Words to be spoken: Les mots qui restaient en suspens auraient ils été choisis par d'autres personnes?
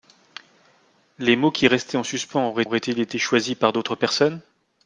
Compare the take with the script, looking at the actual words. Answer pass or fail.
fail